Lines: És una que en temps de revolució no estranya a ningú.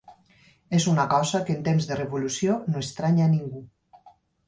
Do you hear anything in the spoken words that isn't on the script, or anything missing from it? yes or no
yes